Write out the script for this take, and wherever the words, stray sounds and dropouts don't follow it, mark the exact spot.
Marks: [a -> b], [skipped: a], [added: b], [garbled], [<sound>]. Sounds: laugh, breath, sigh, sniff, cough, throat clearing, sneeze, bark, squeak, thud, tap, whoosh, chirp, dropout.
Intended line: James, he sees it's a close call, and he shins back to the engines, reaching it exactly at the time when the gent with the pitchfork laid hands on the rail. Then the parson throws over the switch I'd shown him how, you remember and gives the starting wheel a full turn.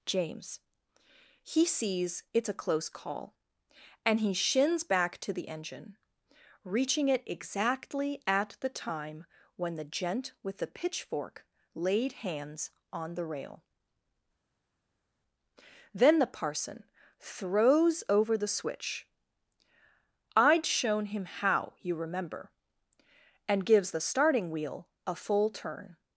James, he sees it's a close call, and he shins back to the [engines, -> engine] reaching it exactly at the time when the gent with the pitchfork laid hands on the rail. Then the parson throws over the switch I'd shown him how, you remember and gives the starting wheel a full turn.